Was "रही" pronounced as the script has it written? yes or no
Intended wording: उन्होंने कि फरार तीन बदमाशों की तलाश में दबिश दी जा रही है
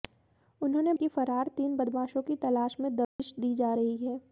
yes